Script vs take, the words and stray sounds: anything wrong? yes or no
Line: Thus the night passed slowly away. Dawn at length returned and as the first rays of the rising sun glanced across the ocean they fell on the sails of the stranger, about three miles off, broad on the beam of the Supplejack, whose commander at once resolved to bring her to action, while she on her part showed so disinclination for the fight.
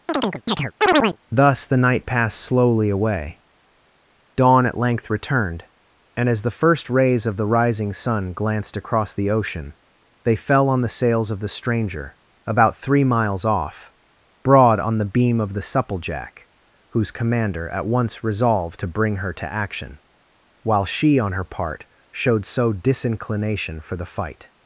yes